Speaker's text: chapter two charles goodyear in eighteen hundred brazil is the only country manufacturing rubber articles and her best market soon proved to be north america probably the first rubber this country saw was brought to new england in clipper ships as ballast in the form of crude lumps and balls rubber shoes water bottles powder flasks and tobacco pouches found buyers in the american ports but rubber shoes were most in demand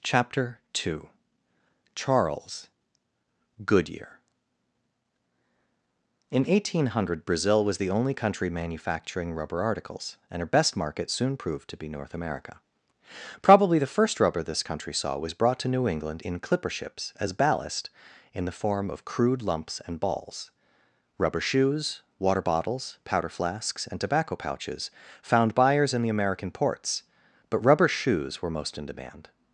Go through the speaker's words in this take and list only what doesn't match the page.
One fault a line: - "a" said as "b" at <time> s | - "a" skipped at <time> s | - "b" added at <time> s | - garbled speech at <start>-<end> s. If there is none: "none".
- "is" said as "was" at 7.6 s